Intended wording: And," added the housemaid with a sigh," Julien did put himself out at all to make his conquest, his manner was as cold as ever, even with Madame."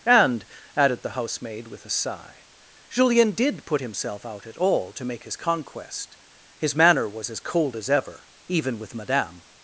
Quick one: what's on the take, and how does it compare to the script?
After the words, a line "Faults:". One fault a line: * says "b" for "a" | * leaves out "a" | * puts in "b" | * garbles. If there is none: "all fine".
And," added the housemaid with a sigh," Julien did put himself out at all to make his conquest, his manner was as cold as ever, even with Madame."
Faults:
all fine